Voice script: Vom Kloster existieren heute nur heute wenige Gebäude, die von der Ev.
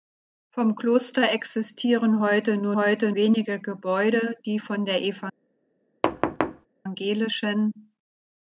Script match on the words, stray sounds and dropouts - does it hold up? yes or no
no